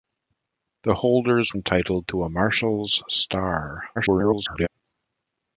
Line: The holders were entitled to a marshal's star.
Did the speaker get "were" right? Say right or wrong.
wrong